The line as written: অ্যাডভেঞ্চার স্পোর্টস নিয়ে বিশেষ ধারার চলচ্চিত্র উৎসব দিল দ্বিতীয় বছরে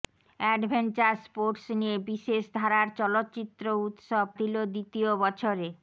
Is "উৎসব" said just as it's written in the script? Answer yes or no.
yes